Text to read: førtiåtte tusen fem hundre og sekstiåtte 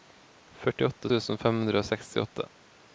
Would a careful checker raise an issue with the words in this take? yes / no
no